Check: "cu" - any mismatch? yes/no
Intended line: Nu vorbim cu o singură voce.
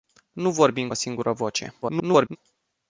yes